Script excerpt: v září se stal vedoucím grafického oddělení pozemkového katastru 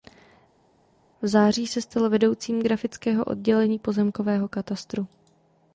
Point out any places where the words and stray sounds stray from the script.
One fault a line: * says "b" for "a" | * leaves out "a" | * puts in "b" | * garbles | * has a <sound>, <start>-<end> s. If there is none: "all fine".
all fine